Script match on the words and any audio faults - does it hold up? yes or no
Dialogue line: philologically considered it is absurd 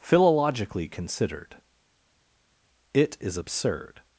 yes